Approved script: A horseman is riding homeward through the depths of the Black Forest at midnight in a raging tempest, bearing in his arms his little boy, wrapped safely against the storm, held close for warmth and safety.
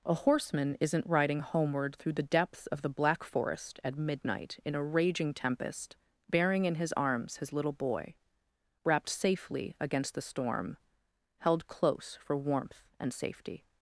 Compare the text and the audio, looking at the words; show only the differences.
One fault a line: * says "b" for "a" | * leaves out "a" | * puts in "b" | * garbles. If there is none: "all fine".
* says "isn't" for "is"